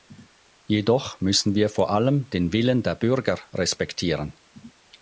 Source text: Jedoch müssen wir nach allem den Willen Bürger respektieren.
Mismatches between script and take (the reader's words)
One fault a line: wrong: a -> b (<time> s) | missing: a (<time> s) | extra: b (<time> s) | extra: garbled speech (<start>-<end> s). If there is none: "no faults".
wrong: nach -> vor (1.7 s)
extra: der (2.8 s)